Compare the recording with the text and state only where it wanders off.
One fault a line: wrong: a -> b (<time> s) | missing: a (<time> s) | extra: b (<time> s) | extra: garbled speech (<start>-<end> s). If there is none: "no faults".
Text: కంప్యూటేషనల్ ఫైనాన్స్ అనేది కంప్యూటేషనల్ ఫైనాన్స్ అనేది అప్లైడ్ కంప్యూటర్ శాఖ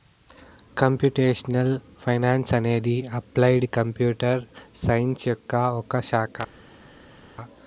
wrong: కంప్యూటేషనల్ ఫైనాన్స్ అనేది అప్లైడ్ కంప్యూటర్ -> అప్లైడ్ కంప్యూటర్ సైన్స్ యొక్క ఒక (3.2 s)